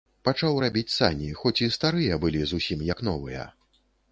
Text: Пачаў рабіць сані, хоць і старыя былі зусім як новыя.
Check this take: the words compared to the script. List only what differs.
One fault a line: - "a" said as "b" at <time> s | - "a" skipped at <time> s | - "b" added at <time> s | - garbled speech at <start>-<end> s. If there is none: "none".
none